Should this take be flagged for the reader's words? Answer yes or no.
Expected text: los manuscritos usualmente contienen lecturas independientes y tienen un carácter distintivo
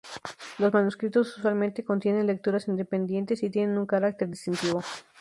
no